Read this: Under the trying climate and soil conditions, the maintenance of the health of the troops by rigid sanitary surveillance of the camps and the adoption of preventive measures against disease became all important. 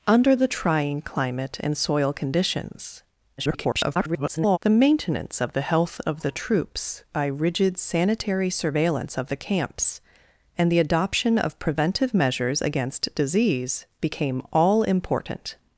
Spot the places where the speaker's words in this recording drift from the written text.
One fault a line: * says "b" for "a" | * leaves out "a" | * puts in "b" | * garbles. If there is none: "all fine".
* garbles